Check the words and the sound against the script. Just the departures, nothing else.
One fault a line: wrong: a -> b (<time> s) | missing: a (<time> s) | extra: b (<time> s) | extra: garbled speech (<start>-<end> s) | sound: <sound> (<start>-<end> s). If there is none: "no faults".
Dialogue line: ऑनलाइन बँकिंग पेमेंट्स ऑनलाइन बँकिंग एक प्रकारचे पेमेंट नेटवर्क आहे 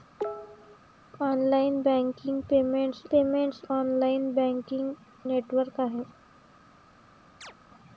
sound: cough (0.2-0.8 s)
extra: पेमेंट्स (3.1 s)
missing: एक प्रकारचे पेमेंट (5.3 s)
sound: chirp (7.4-7.5 s)